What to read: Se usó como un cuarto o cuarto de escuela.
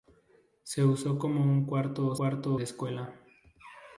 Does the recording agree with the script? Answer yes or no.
yes